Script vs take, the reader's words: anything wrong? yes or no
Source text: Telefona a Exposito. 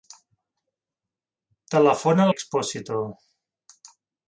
no